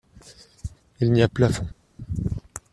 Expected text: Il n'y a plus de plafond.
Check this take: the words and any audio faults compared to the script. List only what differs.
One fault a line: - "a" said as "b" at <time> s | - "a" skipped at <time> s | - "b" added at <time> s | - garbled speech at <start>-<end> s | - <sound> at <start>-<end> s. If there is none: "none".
- "plus" skipped at 1.3 s